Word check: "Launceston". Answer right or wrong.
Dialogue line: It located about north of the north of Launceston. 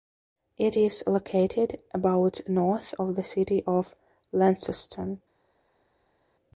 right